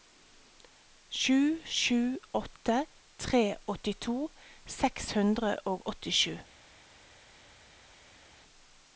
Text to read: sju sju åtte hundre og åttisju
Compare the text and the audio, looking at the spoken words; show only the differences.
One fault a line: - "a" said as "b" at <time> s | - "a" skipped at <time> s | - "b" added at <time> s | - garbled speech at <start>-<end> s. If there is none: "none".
- "tre åttito seks" added at 3.2 s